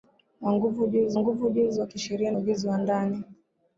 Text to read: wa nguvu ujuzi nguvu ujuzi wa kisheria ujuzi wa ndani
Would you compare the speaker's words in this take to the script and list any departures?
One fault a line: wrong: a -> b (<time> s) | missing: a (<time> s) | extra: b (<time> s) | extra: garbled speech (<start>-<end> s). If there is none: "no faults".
no faults